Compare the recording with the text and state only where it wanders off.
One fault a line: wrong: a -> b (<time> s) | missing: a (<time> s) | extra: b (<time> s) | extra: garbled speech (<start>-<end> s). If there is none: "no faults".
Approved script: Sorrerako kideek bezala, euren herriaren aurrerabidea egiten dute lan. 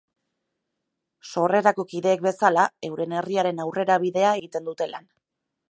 no faults